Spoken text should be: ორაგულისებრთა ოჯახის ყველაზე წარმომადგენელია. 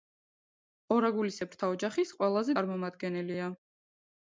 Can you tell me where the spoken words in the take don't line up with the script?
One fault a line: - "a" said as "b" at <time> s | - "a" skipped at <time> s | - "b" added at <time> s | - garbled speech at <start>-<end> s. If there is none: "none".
none